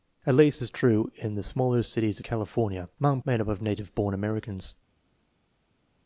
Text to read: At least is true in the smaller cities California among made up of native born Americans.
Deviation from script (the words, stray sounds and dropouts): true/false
false